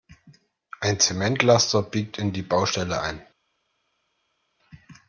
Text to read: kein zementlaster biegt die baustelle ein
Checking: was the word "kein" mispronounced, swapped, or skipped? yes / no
yes